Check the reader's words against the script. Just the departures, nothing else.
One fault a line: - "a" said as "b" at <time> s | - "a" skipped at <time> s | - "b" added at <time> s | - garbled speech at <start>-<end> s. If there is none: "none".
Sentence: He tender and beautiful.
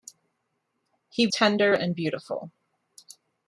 none